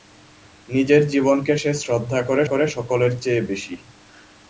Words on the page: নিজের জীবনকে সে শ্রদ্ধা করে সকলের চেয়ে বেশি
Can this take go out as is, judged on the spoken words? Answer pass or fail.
fail